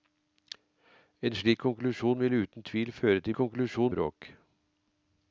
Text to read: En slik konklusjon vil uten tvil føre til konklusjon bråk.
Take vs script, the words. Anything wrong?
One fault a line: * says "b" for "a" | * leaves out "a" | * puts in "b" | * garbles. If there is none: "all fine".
all fine